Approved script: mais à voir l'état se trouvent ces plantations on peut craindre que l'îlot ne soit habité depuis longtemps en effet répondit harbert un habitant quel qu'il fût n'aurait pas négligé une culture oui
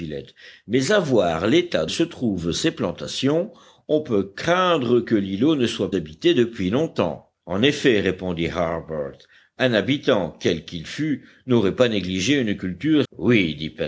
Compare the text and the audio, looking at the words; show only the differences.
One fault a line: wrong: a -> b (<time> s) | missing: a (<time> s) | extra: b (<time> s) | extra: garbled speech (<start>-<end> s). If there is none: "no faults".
no faults